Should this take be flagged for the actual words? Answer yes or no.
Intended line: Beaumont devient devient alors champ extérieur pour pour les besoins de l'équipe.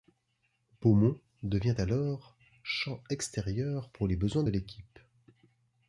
yes